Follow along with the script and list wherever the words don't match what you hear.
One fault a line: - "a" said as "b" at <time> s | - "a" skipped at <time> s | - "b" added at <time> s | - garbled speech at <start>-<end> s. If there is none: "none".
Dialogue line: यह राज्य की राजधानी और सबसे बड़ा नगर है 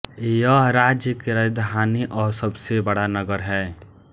none